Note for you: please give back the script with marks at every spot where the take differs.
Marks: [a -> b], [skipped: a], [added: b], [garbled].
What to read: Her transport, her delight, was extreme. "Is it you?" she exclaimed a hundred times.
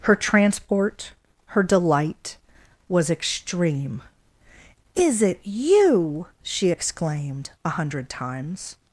Her transport, her delight, was extreme. "Is it you?" she exclaimed a hundred times.